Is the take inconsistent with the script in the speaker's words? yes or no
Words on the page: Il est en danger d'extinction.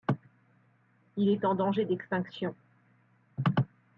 no